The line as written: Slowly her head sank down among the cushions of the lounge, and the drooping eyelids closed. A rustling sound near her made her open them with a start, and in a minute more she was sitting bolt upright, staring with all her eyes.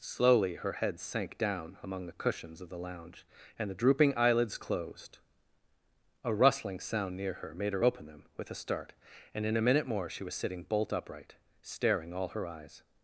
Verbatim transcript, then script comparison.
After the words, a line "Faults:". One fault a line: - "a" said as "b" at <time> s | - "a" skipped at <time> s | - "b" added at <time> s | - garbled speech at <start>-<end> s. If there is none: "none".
Slowly her head sank down among the cushions of the lounge, and the drooping eyelids closed. A rustling sound near her made her open them with a start, and in a minute more she was sitting bolt upright, staring all her eyes.
Faults:
- "with" skipped at 12.1 s